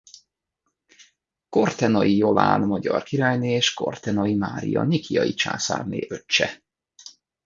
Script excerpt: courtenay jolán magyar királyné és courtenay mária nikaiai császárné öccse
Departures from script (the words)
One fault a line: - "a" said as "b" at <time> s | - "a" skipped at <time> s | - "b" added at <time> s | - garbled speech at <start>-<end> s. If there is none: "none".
none